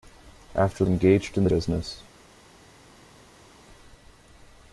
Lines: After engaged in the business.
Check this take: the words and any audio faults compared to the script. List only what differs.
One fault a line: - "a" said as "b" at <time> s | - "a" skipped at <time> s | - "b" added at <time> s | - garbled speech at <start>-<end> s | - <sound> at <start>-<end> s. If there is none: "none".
none